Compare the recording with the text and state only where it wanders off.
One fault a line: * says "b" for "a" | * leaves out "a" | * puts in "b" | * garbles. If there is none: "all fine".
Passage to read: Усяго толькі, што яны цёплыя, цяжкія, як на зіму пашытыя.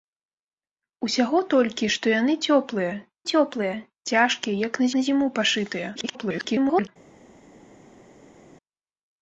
* puts in "цёплыя"
* puts in "на"
* garbles